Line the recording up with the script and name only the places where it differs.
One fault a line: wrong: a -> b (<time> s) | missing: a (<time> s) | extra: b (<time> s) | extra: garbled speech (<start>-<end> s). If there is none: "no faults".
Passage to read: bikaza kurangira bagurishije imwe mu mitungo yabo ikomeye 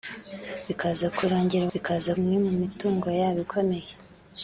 wrong: bagurishije -> bikaza (1.7 s)